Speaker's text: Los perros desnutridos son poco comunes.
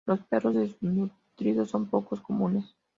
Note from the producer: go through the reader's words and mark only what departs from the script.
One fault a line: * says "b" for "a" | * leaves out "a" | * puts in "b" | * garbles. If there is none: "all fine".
all fine